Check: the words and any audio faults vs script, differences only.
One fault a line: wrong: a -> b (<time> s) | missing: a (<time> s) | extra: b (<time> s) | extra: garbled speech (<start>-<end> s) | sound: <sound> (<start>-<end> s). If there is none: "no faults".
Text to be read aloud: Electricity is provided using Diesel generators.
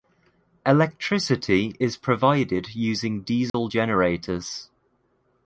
sound: dropout (3.5-3.5 s)